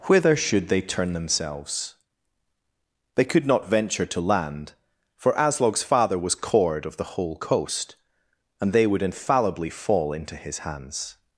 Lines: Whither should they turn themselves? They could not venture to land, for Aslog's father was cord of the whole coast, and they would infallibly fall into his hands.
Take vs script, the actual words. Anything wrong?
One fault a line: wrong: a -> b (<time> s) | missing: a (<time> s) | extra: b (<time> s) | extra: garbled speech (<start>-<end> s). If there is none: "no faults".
no faults